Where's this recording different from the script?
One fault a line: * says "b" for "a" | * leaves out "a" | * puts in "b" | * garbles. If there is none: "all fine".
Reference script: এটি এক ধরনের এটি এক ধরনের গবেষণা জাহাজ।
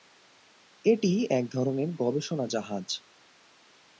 * leaves out "এটি এক ধরনের"